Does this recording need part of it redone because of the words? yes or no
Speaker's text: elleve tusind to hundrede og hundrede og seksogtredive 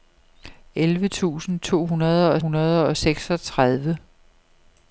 no